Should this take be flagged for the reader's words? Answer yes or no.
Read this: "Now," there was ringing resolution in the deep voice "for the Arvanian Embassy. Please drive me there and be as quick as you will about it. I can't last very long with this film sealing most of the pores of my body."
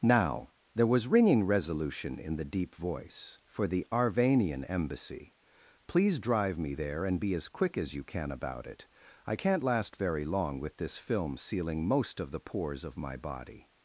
yes